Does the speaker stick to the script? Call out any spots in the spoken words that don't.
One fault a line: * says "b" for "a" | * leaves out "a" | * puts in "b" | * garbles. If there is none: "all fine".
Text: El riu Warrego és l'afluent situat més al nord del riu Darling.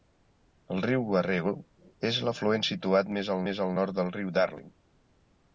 * puts in "més al"